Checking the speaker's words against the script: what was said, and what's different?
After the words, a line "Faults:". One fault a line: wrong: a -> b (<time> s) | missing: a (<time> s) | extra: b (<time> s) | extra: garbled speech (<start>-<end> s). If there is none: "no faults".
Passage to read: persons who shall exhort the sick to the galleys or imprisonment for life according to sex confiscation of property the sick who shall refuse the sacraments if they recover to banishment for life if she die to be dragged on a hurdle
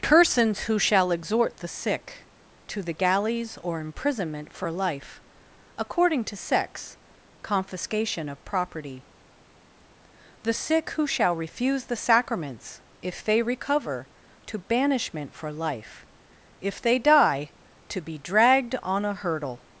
persons who shall exhort the sick to the galleys or imprisonment for life according to sex confiscation of property the sick who shall refuse the sacraments if they recover to banishment for life if they die to be dragged on a hurdle
Faults:
wrong: she -> they (16.8 s)